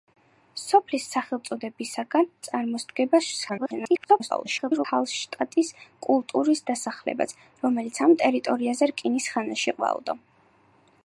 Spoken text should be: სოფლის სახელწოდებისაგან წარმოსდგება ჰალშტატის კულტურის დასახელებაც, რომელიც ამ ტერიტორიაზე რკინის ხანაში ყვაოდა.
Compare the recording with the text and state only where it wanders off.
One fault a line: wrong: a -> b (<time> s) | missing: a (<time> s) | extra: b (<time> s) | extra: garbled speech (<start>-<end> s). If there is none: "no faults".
extra: garbled speech (3.5-4.8 s)